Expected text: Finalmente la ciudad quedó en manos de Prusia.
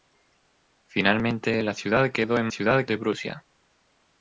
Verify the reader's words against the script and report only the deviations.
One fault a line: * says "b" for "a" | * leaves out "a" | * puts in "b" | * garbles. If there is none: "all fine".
* says "ciudad" for "manos"